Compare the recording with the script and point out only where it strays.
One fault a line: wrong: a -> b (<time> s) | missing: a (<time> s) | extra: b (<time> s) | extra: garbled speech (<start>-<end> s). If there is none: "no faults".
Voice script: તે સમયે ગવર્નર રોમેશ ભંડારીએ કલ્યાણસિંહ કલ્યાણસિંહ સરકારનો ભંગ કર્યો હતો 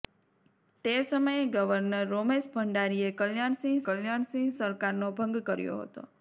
no faults